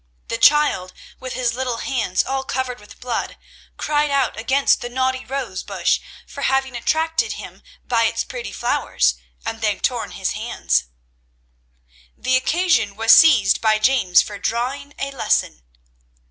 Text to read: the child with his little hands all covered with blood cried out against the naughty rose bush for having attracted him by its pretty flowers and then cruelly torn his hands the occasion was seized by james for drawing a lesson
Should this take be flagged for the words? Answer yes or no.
yes